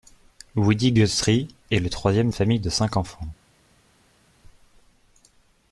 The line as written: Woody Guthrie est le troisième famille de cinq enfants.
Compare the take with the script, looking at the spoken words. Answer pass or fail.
pass